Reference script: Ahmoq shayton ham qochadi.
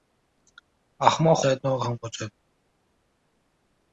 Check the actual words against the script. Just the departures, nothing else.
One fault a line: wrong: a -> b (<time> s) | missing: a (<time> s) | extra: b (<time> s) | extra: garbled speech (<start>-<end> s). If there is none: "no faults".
no faults